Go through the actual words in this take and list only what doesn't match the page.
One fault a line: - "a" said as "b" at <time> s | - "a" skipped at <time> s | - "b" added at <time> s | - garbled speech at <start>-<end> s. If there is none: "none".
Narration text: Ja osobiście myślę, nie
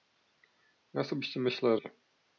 none